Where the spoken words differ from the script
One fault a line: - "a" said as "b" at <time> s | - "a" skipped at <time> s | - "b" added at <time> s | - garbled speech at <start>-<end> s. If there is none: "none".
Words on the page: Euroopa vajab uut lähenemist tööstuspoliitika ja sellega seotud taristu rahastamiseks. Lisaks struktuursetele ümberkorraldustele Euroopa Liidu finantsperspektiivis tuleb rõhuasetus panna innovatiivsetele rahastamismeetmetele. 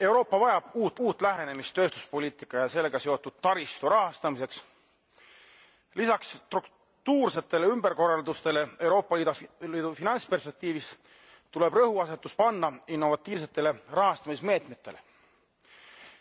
- "uut" added at 1.0 s